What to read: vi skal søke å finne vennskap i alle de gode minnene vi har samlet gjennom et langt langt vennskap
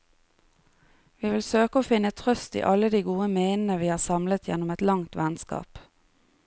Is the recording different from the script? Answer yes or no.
yes